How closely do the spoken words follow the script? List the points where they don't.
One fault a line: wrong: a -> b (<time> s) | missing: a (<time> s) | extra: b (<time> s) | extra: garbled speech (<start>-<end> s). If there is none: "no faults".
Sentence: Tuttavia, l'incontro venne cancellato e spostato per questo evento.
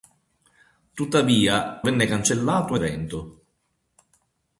missing: l'incontro (1.8 s)
missing: spostato per questo (2.8 s)